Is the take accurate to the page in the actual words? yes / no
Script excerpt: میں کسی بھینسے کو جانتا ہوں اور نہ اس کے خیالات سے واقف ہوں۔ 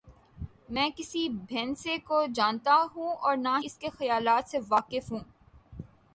yes